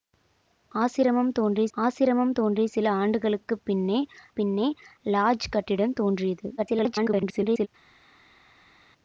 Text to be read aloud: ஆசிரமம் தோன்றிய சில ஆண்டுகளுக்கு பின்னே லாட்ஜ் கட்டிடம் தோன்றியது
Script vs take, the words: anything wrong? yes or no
yes